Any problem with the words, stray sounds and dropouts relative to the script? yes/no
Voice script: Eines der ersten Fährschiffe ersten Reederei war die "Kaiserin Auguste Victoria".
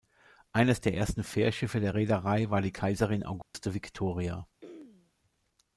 yes